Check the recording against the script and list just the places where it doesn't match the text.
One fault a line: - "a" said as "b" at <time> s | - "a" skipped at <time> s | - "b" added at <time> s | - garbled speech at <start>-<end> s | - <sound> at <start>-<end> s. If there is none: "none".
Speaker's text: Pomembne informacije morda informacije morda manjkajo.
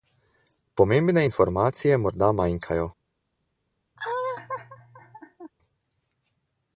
- "informacije morda" skipped at 2.3 s
- laugh at 4.0-5.5 s